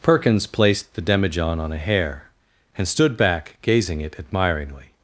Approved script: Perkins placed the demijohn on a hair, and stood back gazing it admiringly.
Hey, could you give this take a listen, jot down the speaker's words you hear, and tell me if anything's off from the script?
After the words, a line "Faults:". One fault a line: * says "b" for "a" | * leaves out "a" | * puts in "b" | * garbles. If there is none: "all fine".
Perkins placed the demijohn on a hair, and stood back gazing it admiringly.
Faults:
all fine